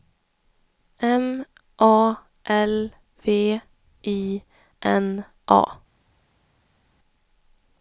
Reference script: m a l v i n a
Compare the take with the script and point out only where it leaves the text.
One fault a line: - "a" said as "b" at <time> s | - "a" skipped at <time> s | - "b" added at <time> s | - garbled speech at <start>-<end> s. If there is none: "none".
none